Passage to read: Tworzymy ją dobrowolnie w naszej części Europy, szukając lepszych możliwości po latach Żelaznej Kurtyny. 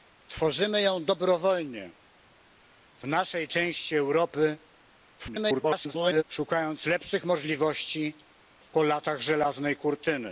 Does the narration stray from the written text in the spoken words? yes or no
yes